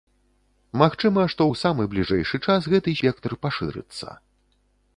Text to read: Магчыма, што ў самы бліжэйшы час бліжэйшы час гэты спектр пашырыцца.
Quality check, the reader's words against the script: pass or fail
fail